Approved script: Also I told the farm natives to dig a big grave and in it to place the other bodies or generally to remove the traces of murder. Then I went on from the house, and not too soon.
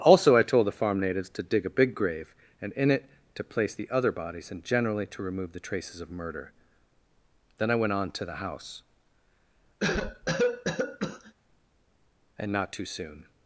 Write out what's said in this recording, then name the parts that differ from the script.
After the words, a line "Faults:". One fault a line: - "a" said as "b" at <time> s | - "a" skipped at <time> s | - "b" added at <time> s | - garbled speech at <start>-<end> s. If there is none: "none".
Also I told the farm natives to dig a big grave and in it to place the other bodies and generally to remove the traces of murder. Then I went on to the house, and not too soon.
Faults:
- "or" said as "and" at 4.5 s
- "from" said as "to" at 8.1 s